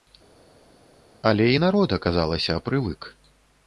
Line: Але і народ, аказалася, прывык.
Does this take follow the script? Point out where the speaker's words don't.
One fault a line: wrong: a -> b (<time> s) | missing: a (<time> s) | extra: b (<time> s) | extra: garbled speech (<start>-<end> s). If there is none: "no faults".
no faults